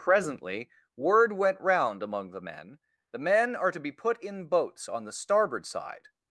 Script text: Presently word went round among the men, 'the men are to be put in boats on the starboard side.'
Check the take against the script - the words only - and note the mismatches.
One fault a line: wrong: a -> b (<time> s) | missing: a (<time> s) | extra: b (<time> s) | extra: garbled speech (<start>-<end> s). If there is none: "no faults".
no faults